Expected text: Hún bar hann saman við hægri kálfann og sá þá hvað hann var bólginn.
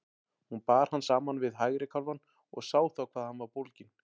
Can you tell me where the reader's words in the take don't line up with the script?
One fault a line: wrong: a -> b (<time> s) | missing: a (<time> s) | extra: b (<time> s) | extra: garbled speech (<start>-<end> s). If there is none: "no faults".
no faults